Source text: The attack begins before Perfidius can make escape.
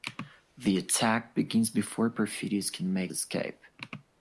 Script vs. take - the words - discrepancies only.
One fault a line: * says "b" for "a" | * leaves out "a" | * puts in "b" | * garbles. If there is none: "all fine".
all fine